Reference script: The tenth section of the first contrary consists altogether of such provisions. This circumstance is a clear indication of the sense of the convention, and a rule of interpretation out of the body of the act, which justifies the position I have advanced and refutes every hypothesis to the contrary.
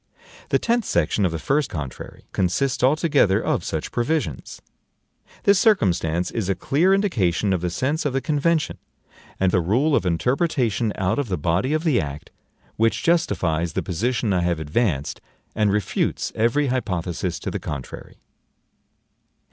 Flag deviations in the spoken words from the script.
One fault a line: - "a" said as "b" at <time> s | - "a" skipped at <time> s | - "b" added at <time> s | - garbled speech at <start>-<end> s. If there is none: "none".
none